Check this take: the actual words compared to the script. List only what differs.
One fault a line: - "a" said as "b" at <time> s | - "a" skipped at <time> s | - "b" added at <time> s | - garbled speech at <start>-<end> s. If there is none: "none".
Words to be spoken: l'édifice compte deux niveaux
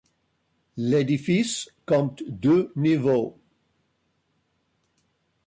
none